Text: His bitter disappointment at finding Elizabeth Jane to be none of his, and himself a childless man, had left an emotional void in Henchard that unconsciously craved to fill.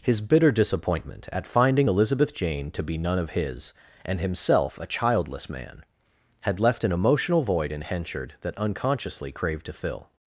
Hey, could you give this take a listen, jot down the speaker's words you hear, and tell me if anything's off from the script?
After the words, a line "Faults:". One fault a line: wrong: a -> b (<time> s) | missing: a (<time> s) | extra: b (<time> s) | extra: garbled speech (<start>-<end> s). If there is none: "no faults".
His bitter disappointment at finding Elizabeth Jane to be none of his, and himself a childless man, had left an emotional void in Henchard that unconsciously craved to fill.
Faults:
no faults